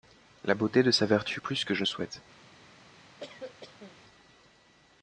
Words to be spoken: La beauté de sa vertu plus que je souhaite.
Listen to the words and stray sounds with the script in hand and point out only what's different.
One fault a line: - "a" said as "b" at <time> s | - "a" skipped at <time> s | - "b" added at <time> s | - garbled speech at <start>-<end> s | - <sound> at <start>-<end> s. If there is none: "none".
- cough at 3.2-4.0 s